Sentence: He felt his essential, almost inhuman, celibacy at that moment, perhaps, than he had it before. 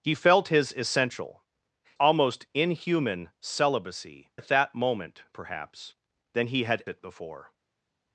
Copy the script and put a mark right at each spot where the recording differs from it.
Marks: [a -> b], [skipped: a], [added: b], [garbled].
He felt his essential, almost inhuman, celibacy at that moment, perhaps, than he had it before.